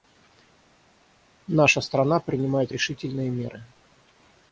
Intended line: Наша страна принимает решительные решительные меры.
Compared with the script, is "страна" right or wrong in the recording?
right